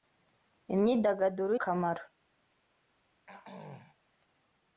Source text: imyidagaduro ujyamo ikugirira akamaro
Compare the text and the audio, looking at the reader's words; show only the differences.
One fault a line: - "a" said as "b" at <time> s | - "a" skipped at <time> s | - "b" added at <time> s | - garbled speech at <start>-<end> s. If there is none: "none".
- "ujyamo ikugirira" skipped at 1.5 s